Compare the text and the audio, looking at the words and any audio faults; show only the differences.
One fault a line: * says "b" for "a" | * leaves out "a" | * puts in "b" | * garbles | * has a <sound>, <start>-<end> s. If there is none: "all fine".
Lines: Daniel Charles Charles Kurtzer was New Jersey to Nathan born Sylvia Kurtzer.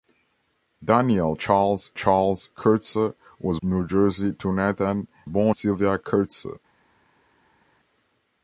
all fine